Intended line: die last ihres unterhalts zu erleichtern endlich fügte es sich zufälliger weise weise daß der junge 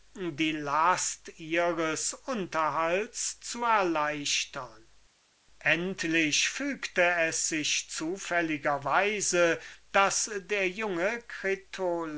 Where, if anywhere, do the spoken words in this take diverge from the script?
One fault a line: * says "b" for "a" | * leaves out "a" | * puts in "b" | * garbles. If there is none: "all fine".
* leaves out "weise"